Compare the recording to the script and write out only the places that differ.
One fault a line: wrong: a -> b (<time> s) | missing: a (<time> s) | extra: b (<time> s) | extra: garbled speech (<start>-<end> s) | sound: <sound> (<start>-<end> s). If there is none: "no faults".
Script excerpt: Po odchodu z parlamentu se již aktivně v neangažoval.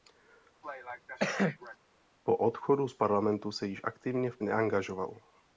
sound: cough (0.6-1.8 s)